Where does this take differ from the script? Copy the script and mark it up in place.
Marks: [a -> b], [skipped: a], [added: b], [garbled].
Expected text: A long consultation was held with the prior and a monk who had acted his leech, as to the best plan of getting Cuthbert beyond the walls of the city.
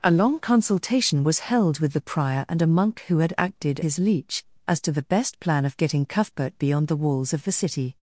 A long consultation was held with the prior and a monk who had acted his leech, as to the best plan of getting Cuthbert beyond the walls of the city.